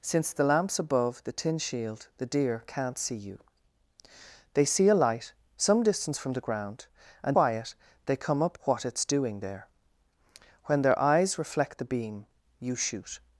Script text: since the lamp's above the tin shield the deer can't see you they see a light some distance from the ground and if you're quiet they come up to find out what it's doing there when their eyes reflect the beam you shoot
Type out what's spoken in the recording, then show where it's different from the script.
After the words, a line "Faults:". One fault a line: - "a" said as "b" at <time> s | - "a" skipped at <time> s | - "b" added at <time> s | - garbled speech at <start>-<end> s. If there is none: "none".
since the lamp's above the tin shield the deer can't see you they see a light some distance from the ground and quiet they come up what it's doing there when their eyes reflect the beam you shoot
Faults:
- "if you're" skipped at 7.4 s
- "to find out" skipped at 8.6 s